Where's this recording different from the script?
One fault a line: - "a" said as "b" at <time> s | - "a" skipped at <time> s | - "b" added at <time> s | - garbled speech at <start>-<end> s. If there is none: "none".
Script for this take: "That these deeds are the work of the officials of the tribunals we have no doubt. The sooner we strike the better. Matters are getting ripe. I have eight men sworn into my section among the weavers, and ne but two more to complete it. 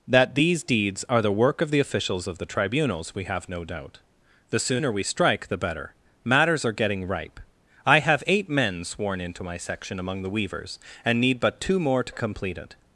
- "ne" said as "need" at 11.2 s